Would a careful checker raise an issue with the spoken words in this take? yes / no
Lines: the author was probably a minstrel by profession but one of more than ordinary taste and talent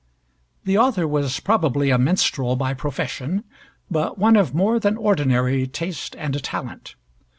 no